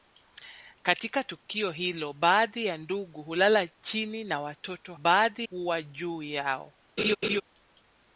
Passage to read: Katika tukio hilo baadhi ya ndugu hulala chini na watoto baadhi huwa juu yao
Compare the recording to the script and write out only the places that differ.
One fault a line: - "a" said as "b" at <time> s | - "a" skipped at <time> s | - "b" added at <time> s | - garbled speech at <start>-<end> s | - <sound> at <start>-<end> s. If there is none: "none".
- laugh at 7.0-7.4 s